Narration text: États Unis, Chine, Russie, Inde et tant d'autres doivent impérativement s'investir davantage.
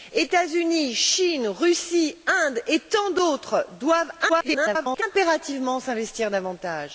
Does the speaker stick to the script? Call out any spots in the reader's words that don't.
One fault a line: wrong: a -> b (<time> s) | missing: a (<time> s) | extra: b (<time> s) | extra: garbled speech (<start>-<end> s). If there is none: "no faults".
extra: garbled speech (4.3-5.0 s)